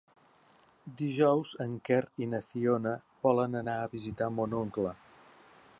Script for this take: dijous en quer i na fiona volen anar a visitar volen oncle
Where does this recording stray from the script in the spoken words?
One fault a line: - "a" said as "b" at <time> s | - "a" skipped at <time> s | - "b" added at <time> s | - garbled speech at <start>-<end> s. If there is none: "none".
- "volen" said as "mon" at 4.4 s